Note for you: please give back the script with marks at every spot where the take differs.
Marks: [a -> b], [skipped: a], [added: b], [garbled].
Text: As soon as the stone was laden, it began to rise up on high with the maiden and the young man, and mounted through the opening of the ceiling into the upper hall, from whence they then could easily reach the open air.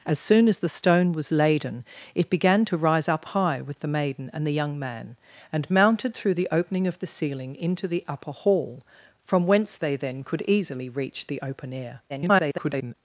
As soon as the stone was laden, it began to rise up [skipped: on] high with the maiden and the young man, and mounted through the opening of the ceiling into the upper hall, from whence they then could easily reach the open air. [garbled]